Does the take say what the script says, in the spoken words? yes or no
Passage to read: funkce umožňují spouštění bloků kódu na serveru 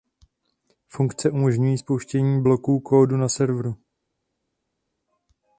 yes